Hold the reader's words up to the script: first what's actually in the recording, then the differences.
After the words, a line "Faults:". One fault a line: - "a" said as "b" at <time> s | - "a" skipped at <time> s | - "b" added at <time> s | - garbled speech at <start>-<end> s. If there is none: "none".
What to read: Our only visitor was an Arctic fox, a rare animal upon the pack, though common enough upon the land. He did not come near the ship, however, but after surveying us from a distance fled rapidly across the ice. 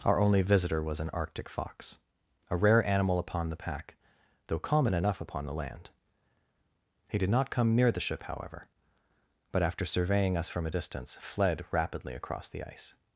Our only visitor was an Arctic fox, a rare animal upon the pack, though common enough upon the land. He did not come near the ship, however, but after surveying us from a distance fled rapidly across the ice.
Faults:
none